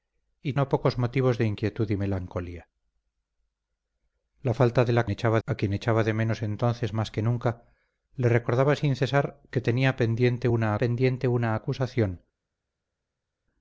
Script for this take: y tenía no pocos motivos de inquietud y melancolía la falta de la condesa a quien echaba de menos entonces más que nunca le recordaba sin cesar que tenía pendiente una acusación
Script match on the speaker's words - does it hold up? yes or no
no